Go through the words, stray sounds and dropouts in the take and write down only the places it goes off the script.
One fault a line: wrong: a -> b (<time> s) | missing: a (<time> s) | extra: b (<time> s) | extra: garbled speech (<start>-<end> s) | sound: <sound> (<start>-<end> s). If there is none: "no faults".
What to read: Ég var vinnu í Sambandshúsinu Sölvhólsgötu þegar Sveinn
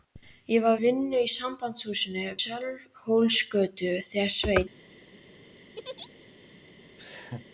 sound: laugh (5.8-6.1 s)
sound: laugh (7.0-7.5 s)